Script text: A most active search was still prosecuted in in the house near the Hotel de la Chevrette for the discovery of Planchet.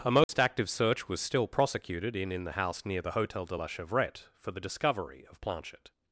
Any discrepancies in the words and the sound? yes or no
yes